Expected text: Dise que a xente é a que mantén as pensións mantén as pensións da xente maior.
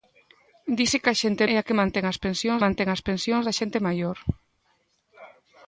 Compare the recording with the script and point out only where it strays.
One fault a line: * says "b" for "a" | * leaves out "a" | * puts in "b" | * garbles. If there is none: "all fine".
all fine